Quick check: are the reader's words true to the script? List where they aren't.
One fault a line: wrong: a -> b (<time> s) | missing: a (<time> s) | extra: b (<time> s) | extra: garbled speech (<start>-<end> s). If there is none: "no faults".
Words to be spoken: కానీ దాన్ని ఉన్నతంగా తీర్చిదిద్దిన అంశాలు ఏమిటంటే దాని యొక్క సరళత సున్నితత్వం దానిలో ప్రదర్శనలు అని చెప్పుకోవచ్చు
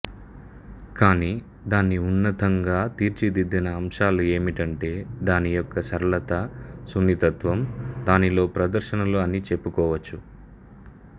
no faults